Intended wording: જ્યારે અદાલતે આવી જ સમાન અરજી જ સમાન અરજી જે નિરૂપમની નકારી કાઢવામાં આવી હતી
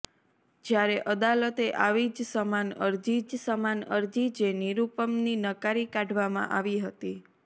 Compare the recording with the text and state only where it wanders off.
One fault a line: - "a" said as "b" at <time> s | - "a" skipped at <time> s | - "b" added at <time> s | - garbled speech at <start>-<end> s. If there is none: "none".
none